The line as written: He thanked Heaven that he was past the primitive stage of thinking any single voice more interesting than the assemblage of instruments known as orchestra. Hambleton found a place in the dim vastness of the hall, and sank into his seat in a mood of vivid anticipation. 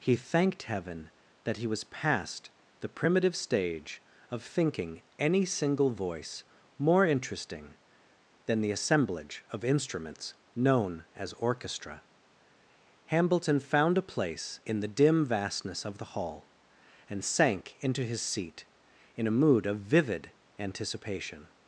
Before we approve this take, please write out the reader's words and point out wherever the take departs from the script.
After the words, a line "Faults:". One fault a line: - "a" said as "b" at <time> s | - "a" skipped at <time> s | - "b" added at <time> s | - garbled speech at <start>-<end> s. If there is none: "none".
He thanked Heaven that he was past the primitive stage of thinking any single voice more interesting than the assemblage of instruments known as orchestra. Hambleton found a place in the dim vastness of the hall, and sank into his seat in a mood of vivid anticipation.
Faults:
none